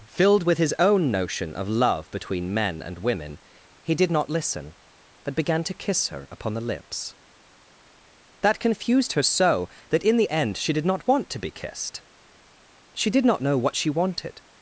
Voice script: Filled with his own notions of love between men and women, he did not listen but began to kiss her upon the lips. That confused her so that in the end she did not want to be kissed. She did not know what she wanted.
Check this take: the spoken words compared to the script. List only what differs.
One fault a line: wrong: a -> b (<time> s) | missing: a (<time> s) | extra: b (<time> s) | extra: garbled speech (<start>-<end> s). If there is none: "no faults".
wrong: notions -> notion (1.1 s)